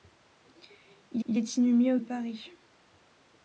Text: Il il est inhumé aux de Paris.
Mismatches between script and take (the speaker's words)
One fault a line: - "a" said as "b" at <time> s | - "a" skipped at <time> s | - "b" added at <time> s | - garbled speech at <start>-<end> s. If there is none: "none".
none